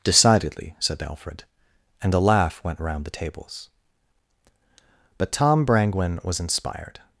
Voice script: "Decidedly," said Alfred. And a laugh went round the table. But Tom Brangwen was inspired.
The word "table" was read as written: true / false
false